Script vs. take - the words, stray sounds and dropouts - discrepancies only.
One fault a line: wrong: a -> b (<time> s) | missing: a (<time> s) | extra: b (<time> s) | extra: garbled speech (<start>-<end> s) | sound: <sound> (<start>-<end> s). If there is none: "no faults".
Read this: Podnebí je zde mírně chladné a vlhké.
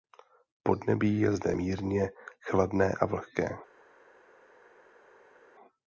no faults